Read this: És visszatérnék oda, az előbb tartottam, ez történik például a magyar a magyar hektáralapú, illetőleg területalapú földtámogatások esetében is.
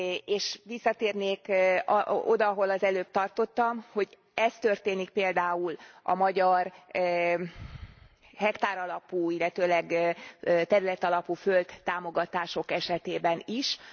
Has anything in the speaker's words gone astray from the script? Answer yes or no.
yes